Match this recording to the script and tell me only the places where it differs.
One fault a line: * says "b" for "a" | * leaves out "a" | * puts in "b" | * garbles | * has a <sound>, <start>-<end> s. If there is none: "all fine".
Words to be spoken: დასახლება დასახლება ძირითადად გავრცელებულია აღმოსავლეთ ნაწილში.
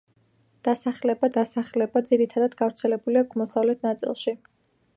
all fine